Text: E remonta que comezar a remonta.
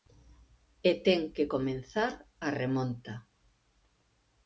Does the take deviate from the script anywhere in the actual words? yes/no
yes